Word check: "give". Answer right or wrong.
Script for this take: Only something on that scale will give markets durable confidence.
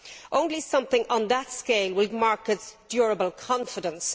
wrong